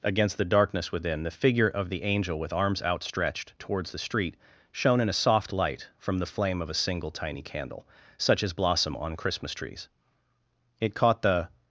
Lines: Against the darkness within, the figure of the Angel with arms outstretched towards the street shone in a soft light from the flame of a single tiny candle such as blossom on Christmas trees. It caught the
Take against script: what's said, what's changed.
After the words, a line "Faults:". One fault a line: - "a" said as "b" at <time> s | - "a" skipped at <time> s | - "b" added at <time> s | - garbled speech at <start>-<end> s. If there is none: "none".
Against the darkness within, the figure of the Angel with arms outstretched towards the street shone in a soft light from the flame of a single tiny candle such as blossom on Christmas trees. It caught the
Faults:
none